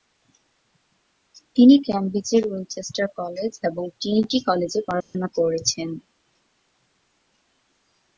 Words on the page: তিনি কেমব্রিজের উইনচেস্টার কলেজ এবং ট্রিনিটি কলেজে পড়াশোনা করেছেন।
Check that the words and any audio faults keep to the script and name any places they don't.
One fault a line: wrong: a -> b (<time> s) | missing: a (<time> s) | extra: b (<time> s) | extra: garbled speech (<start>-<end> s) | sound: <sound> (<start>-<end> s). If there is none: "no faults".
sound: dropout (5.0-5.1 s)